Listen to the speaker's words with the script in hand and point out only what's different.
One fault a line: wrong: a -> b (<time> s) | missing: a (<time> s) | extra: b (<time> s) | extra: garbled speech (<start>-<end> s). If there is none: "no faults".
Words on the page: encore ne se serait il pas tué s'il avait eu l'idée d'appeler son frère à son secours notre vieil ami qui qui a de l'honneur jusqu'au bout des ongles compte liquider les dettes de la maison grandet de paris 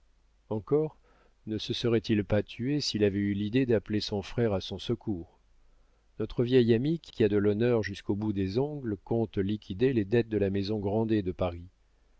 no faults